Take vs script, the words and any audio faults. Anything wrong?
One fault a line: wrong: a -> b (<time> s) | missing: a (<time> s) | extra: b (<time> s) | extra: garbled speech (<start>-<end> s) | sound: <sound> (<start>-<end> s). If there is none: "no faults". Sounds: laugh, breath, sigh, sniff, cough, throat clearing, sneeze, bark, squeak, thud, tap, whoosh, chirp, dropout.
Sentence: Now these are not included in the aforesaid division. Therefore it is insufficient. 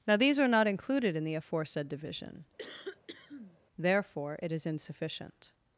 sound: cough (2.6-3.6 s)